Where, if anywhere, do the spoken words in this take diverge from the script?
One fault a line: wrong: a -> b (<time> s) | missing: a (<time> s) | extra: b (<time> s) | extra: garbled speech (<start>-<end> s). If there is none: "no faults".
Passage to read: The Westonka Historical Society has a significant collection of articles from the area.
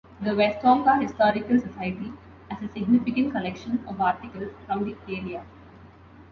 no faults